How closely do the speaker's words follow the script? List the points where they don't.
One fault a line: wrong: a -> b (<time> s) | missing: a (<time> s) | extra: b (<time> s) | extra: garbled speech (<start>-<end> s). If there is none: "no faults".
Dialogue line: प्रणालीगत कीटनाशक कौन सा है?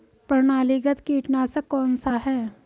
no faults